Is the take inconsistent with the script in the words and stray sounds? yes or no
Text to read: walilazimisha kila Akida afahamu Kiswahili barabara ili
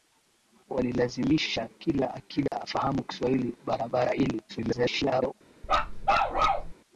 yes